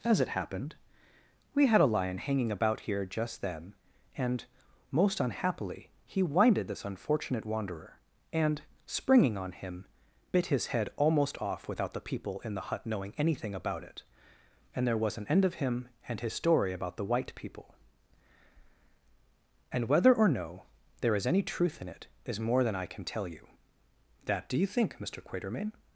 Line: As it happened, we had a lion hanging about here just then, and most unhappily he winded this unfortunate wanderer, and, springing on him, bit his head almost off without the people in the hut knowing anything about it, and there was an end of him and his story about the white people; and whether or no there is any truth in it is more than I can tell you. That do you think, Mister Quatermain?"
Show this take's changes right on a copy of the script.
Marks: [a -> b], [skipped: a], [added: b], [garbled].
As it happened, we had a lion hanging about here just then, and most unhappily he winded this unfortunate wanderer, and, springing on him, bit his head almost off without the people in the hut knowing anything about it, and there was an end of him and his story about the white people; and whether or no there is any truth in it is more than I can tell you. That do you think, Mister Quatermain?"